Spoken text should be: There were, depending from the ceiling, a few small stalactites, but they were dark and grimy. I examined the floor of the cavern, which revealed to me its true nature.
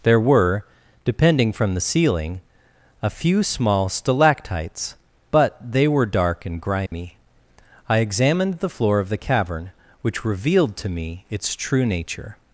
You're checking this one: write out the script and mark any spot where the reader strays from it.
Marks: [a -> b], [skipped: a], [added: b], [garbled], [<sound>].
There were, depending from the ceiling, a few small stalactites, but they were dark and grimy. [dropout] I examined the floor of the cavern, which revealed to me its true nature.